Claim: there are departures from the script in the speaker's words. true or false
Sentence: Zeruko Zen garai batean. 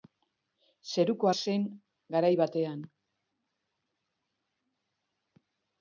false